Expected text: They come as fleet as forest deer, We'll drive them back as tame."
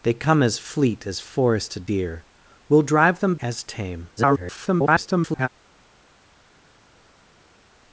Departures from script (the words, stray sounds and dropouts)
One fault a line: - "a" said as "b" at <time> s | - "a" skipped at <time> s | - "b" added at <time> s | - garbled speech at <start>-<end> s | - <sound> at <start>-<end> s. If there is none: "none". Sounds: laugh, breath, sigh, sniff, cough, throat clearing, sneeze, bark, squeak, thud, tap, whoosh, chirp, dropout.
- "back" skipped at 3.3 s
- garbled speech at 4.2-5.5 s